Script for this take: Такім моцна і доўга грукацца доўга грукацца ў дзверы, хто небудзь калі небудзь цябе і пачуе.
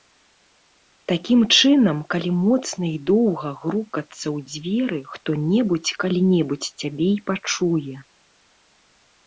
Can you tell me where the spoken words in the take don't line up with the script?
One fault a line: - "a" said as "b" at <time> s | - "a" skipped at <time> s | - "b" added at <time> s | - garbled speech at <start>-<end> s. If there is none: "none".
- "чынам калі" added at 1.6 s
- "доўга грукацца" skipped at 4.2 s